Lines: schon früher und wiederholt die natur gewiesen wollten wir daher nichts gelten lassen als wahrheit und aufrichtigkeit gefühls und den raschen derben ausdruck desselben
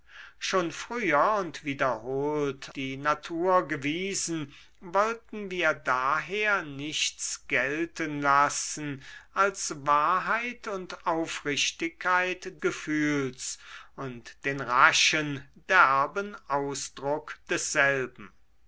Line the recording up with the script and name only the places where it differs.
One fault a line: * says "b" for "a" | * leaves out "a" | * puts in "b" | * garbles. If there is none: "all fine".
all fine